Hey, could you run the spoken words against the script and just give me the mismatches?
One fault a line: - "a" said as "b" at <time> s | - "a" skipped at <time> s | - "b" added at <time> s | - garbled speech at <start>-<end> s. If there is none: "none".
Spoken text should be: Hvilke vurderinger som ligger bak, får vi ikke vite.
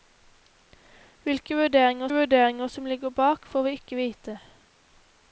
- "vurderinger" added at 2.1 s